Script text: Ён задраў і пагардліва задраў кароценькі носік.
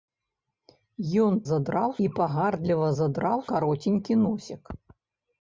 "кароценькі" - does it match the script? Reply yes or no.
yes